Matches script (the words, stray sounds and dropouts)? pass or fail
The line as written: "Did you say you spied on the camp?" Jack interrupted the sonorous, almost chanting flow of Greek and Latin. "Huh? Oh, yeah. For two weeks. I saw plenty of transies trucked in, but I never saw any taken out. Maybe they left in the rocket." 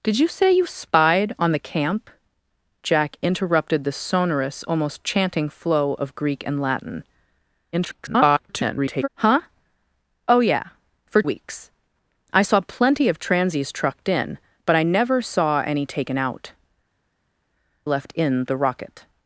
fail